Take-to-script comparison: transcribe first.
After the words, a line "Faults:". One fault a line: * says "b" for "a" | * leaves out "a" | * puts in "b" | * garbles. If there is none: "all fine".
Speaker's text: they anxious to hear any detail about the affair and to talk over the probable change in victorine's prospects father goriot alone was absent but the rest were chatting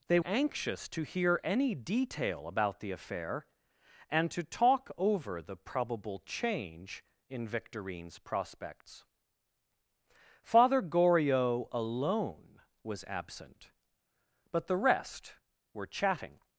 they anxious to hear any detail about the affair and to talk over the probable change in victorine's prospects father goriot alone was absent but the rest were chatting
Faults:
all fine